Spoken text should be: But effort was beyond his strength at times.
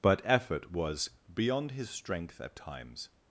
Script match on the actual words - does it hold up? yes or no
yes